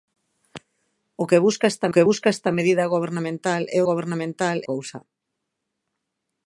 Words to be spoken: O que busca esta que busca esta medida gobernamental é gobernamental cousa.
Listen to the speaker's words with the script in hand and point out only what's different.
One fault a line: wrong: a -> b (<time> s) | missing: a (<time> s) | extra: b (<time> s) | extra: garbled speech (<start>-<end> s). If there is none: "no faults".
no faults